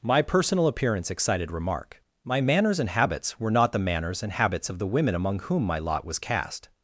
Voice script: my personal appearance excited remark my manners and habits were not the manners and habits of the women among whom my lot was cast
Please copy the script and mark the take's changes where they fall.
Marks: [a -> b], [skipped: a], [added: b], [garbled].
my personal appearance excited remark my manners and habits were not the manners and habits of the women among whom my lot was cast